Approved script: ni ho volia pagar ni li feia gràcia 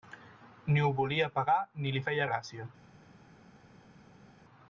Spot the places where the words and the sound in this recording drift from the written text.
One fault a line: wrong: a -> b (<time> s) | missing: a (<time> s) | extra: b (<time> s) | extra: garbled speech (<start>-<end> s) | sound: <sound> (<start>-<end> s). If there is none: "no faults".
no faults